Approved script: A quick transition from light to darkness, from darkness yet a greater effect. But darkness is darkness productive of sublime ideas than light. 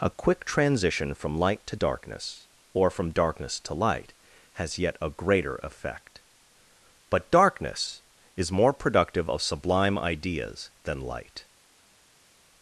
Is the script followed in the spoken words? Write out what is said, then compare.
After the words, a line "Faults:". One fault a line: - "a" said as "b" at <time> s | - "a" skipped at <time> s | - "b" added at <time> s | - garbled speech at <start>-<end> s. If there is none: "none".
A quick transition from light to darkness, or from darkness to light, has yet a greater effect. But darkness is more productive of sublime ideas than light.
Faults:
- "or" added at 2.7 s
- "to light has" added at 3.6 s
- "darkness" said as "more" at 8.5 s